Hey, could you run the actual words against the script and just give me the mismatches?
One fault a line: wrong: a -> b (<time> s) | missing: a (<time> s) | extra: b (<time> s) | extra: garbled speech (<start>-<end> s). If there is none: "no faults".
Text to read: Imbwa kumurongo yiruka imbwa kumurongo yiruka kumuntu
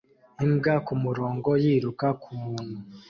missing: imbwa kumurongo yiruka (2.1 s)